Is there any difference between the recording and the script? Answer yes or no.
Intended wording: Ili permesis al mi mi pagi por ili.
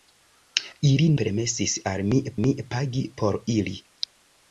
no